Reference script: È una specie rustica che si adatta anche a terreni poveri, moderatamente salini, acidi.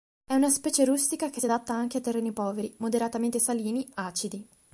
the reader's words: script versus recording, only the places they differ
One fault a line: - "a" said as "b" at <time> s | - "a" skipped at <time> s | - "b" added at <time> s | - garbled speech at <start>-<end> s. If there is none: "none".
none